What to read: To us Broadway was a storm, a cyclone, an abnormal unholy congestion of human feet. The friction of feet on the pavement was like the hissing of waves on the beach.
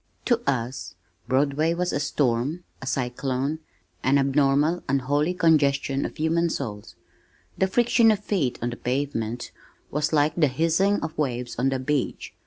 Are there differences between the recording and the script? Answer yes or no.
yes